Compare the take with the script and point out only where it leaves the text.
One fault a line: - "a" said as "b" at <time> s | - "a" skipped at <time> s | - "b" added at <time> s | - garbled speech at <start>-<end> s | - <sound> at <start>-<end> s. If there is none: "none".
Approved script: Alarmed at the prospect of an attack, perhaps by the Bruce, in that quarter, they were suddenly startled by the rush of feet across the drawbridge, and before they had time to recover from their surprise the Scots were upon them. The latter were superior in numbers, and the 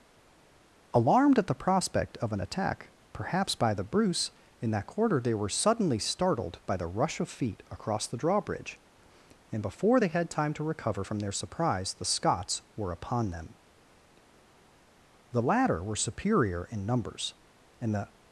none